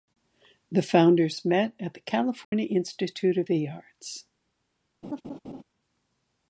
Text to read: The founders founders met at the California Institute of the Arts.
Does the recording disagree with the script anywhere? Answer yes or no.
yes